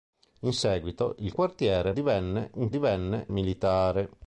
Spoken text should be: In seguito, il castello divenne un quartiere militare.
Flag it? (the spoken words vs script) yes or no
yes